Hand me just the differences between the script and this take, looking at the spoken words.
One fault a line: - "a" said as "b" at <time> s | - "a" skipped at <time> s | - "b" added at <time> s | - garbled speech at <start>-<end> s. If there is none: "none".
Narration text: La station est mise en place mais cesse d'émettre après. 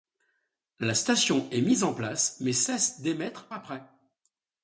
none